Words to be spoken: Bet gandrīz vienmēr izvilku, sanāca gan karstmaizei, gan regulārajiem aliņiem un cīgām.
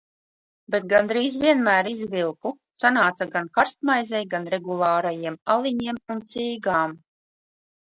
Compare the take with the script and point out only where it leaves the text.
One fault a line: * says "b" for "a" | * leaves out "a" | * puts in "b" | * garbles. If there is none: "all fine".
all fine